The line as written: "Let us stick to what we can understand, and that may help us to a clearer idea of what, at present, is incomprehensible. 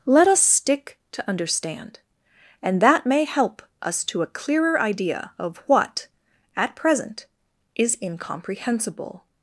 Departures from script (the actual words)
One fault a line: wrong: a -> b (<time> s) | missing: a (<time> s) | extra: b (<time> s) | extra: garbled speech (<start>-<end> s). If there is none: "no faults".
missing: what we can (1.3 s)